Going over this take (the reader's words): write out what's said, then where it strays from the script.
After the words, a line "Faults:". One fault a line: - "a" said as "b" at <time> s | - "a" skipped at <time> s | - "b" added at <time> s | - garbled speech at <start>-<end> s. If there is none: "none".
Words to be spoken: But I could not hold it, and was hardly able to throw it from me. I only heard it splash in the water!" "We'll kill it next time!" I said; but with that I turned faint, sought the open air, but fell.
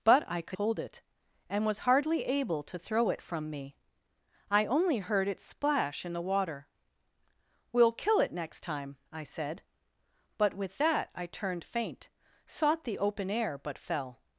But I could hold it, and was hardly able to throw it from me. I only heard it splash in the water!" "We'll kill it next time!" I said; but with that I turned faint, sought the open air, but fell.
Faults:
- "not" skipped at 0.6 s